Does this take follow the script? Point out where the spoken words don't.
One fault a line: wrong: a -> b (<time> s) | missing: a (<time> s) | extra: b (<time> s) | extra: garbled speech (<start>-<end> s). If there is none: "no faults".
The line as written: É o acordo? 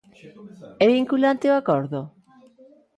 extra: vinculante (0.9 s)